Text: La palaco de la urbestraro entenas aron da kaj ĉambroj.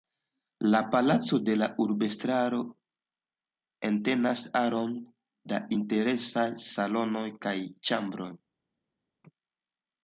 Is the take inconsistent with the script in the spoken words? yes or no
yes